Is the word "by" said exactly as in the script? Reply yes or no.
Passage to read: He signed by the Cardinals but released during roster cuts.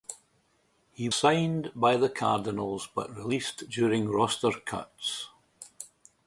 yes